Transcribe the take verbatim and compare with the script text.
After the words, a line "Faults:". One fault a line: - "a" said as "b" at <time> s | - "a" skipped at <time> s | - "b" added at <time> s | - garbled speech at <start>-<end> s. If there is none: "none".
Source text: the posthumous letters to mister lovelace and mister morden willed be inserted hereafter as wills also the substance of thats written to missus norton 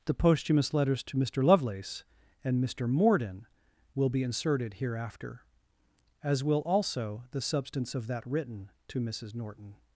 the posthumous letters to mister lovelace and mister morden will be inserted hereafter as will also the substance of that written to missus norton
Faults:
- "willed" said as "will" at 3.9 s
- "wills" said as "will" at 6.4 s
- "thats" said as "that" at 8.1 s